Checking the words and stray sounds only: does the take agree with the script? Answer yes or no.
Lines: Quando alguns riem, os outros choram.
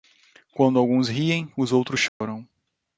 no